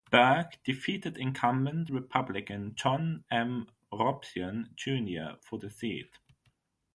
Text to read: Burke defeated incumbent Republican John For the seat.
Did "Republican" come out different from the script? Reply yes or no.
no